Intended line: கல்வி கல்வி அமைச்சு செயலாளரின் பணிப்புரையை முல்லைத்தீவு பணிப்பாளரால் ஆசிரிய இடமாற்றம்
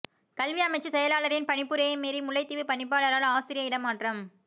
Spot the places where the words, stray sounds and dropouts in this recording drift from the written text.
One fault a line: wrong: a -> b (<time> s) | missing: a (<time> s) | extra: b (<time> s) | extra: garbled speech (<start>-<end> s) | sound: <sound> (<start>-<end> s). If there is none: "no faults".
missing: கல்வி (0.6 s)
extra: மீறி (2.0 s)